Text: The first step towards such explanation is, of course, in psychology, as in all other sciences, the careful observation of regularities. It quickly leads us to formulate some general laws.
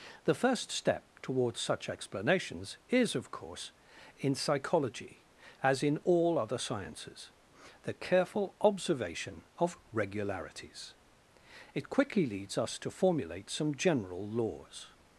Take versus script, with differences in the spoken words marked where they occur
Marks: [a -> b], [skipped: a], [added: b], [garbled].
The first step towards such [explanation -> explanations] is, of course, in psychology, as in all other sciences, the careful observation of regularities. It quickly leads us to formulate some general laws.